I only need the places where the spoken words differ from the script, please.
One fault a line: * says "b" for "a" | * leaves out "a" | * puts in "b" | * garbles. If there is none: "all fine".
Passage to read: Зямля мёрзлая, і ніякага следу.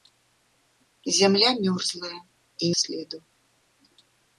* leaves out "ніякага"